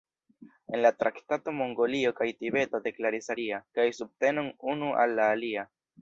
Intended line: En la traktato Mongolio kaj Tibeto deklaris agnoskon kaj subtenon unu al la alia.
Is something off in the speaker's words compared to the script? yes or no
yes